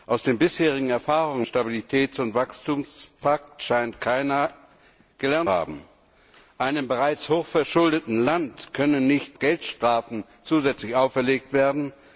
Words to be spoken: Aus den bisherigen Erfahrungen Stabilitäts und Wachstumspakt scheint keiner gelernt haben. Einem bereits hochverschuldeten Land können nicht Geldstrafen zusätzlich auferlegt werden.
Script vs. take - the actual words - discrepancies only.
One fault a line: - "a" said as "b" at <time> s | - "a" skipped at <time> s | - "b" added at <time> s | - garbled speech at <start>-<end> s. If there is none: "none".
none